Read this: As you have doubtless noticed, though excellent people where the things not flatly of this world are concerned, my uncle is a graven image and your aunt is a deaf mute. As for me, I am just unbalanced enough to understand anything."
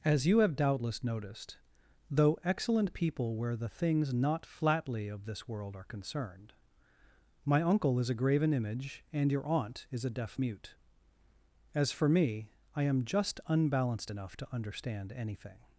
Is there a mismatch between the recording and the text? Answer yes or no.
no